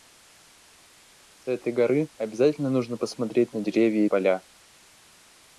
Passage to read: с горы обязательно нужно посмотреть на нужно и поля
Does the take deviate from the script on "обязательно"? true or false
false